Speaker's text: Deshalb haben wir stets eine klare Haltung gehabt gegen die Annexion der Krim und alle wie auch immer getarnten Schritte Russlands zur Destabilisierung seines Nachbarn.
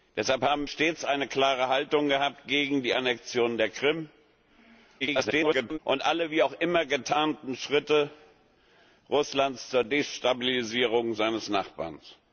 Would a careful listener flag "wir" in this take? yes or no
yes